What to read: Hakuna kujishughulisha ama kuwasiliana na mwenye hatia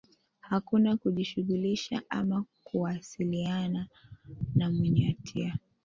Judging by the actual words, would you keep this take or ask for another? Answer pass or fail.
pass